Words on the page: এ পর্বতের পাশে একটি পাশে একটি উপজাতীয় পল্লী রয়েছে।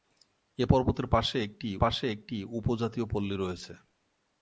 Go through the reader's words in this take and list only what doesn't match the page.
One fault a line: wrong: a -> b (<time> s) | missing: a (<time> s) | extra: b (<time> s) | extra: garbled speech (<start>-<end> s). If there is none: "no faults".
no faults